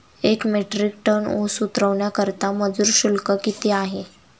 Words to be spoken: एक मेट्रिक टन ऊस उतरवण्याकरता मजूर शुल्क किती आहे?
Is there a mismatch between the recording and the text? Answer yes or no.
no